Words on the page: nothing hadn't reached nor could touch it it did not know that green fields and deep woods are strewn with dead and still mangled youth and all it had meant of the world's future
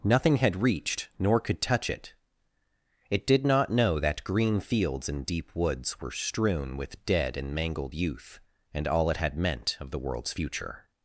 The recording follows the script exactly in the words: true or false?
false